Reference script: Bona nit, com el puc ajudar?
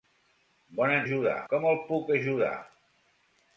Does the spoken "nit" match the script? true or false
false